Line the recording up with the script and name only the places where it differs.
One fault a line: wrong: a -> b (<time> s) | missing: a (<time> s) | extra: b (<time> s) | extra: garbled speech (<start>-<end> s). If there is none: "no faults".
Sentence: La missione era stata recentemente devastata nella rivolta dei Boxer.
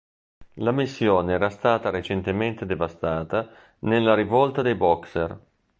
no faults